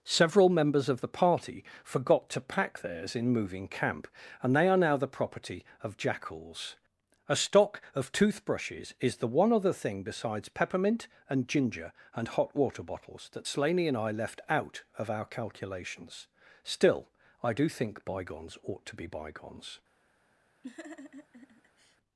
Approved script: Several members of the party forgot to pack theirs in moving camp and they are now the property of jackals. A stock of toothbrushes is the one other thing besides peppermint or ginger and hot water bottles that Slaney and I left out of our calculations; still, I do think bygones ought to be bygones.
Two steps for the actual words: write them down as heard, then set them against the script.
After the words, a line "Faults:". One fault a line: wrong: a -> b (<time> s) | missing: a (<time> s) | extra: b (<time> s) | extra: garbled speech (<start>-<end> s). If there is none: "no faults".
Several members of the party forgot to pack theirs in moving camp and they are now the property of jackals. A stock of toothbrushes is the one other thing besides peppermint and ginger and hot water bottles that Slaney and I left out of our calculations; still, I do think bygones ought to be bygones.
Faults:
wrong: or -> and (11.3 s)